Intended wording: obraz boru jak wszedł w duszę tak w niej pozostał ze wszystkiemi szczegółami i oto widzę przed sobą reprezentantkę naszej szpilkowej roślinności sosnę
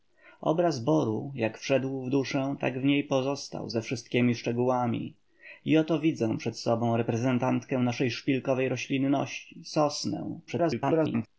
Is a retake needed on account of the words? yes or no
yes